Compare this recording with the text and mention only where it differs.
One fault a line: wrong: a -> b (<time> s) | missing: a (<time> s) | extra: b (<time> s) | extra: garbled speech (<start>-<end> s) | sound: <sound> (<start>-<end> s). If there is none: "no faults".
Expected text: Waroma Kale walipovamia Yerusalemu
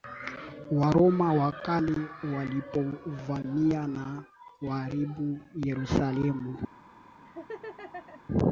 extra: wa (1.3 s)
extra: na kuharibu (3.9 s)
sound: laugh (7.2-8.2 s)